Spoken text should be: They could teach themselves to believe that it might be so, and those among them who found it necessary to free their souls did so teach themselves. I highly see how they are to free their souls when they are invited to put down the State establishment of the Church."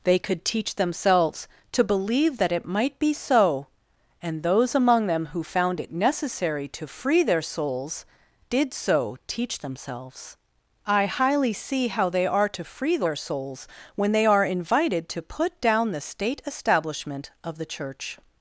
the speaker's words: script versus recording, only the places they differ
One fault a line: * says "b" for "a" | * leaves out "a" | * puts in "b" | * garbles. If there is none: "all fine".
all fine